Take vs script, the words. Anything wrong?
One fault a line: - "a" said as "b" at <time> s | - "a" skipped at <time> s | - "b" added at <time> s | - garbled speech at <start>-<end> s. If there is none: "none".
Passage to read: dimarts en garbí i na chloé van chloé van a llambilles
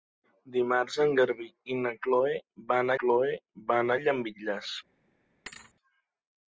none